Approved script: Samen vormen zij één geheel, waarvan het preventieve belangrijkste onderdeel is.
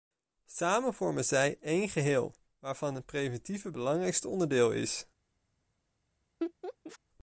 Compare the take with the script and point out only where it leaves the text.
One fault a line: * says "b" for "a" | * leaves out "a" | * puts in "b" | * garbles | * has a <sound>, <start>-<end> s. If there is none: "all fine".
* has a laugh, 6.4-7.0 s